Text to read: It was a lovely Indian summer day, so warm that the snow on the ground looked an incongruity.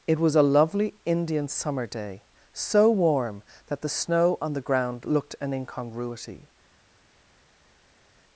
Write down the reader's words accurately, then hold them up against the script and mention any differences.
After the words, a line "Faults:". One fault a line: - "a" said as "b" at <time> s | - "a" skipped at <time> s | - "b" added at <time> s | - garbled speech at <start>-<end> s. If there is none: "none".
It was a lovely Indian summer day, so warm that the snow on the ground looked an incongruity.
Faults:
none